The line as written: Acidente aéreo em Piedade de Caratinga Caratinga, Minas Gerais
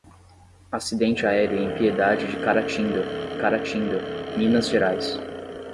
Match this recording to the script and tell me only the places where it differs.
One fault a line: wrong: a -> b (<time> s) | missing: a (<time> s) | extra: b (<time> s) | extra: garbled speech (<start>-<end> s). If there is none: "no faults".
no faults